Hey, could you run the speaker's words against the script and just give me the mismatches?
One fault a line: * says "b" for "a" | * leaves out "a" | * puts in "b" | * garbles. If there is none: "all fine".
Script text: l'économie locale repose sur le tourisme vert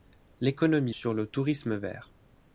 * leaves out "locale repose"